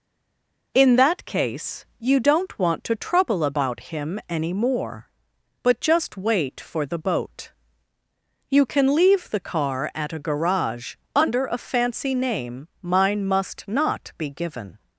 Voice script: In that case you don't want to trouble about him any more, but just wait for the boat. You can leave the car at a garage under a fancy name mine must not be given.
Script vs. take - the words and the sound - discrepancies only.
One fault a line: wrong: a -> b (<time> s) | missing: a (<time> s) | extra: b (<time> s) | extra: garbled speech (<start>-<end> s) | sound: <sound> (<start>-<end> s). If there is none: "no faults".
no faults